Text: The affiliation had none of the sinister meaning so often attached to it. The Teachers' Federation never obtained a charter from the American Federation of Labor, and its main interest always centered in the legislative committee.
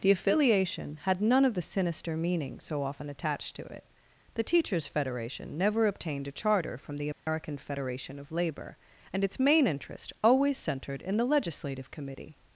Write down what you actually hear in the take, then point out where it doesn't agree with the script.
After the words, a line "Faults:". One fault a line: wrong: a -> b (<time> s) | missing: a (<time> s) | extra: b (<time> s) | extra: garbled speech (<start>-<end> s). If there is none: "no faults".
The affiliation had none of the sinister meaning so often attached to it. The Teachers' Federation never obtained a charter from the American Federation of Labor, and its main interest always centered in the legislative committee.
Faults:
no faults